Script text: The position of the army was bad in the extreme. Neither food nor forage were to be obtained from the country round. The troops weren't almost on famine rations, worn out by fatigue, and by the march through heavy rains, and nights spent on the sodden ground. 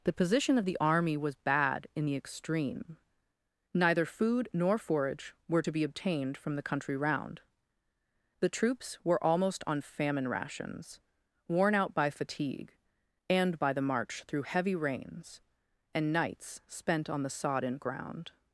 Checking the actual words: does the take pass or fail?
fail